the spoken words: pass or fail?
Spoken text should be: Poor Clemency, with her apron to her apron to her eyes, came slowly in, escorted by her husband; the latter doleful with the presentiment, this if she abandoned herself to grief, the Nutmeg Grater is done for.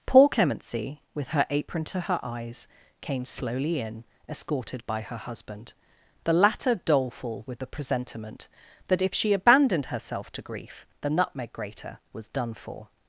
fail